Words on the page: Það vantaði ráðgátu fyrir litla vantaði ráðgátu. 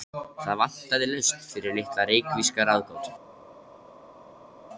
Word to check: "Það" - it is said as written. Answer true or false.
true